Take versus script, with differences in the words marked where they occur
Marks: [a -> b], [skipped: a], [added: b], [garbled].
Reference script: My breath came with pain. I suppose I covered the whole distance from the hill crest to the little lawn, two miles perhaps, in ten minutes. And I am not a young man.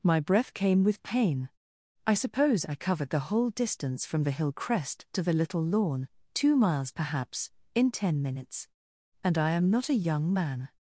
My breath came with pain. I suppose I covered the whole distance from the hill crest to the little lawn, two miles perhaps, in ten minutes. And I am not a young man.